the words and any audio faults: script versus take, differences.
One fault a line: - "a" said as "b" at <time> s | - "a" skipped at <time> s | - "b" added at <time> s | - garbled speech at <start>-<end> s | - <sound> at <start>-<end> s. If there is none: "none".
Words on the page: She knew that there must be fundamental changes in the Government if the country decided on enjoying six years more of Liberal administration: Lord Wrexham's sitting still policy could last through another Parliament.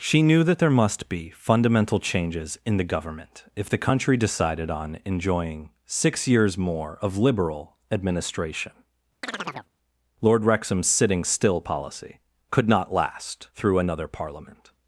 - chirp at 9.2-9.7 s
- "not" added at 12.7 s